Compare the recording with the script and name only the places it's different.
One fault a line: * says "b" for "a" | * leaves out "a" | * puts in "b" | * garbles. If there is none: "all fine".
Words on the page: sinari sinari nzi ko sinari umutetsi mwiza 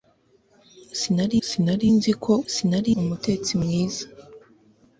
all fine